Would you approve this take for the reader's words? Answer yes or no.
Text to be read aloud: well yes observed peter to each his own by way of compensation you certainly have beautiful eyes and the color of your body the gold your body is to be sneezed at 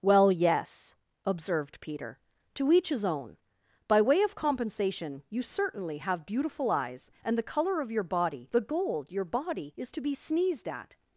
yes